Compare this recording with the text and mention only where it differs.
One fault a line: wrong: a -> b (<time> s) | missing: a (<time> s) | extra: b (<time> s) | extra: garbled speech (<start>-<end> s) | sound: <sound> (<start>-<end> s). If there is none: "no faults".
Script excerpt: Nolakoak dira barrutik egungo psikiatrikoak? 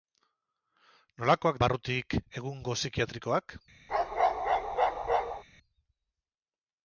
missing: dira (1.6 s)
sound: bark (3.9-5.4 s)